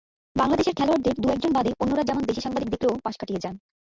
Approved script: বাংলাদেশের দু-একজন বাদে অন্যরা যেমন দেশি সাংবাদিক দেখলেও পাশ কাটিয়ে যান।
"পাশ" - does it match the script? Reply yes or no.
yes